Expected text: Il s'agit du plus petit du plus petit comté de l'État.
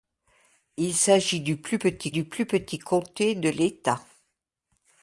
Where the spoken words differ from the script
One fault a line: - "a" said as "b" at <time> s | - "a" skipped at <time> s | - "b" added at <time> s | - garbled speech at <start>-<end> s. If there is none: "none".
none